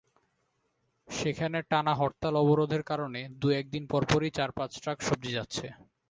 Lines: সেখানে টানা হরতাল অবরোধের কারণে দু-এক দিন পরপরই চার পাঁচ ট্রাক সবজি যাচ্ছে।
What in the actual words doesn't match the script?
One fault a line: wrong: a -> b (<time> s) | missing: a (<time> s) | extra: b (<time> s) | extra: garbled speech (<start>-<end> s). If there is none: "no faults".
no faults